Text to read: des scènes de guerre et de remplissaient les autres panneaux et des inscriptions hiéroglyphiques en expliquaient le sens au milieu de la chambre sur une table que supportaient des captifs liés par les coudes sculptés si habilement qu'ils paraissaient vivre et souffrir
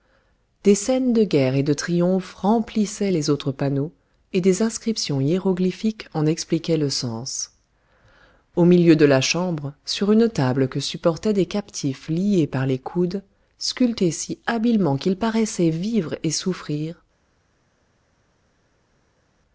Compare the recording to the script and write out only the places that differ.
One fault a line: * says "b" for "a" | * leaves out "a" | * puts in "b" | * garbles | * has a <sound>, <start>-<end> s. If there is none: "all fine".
* puts in "triomphe"